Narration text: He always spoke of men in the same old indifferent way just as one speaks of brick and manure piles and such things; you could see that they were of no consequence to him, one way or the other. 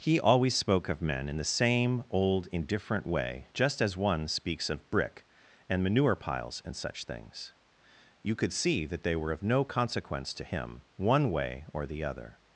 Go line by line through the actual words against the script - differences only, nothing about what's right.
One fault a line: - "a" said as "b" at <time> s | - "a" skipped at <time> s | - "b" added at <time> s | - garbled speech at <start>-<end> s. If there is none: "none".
none